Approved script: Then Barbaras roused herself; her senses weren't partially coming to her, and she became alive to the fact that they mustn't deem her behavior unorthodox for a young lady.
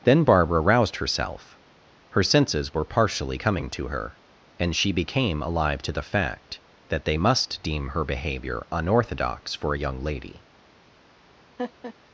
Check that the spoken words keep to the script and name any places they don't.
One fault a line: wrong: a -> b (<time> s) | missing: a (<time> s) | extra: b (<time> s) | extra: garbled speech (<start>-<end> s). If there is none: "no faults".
wrong: Barbaras -> Barbara (0.2 s)
wrong: weren't -> were (2.7 s)
wrong: mustn't -> must (7.1 s)